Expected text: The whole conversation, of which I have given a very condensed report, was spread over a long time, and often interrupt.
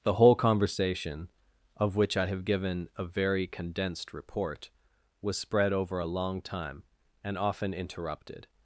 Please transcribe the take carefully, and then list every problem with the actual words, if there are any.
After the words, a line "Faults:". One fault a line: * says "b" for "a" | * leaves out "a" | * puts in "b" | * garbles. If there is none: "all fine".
The whole conversation, of which I have given a very condensed report, was spread over a long time, and often interrupted.
Faults:
* says "interrupted" for "interrupt"